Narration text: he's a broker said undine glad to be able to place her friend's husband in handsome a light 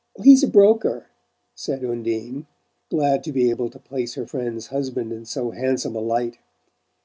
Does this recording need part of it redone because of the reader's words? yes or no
yes